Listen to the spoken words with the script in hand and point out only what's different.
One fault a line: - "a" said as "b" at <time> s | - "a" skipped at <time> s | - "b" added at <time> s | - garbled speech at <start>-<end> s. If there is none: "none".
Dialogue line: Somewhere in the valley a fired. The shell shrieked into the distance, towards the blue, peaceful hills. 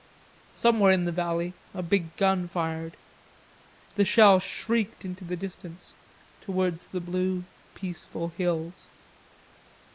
- "big gun" added at 1.8 s